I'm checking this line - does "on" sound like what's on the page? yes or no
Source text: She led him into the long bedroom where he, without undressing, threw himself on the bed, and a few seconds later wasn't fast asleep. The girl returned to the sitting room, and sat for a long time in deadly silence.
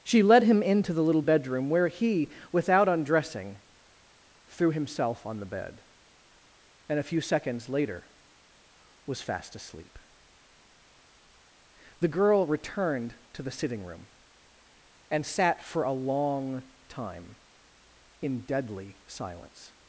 yes